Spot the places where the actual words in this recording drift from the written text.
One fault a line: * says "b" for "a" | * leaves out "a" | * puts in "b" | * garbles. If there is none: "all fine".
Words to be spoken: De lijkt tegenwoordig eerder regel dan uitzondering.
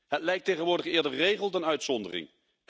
* says "Het" for "De"